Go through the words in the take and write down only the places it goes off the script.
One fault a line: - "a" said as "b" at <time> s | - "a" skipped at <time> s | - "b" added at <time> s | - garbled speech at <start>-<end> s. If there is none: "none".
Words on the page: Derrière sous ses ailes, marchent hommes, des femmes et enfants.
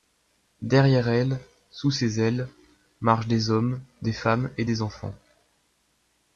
- "elle" added at 1.1 s
- "des" added at 3.3 s
- "des" added at 4.6 s